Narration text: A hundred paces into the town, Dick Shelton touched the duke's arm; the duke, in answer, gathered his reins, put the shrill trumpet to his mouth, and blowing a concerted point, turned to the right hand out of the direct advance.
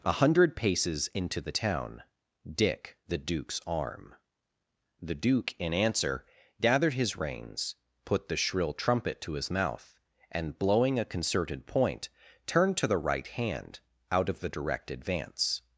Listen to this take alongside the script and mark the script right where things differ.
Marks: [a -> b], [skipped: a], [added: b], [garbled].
A hundred paces into the town, Dick [skipped: Shelton touched] the duke's arm; the duke, in answer, gathered his reins, put the shrill trumpet to his mouth, and blowing a concerted point, turned to the right hand out of the direct advance.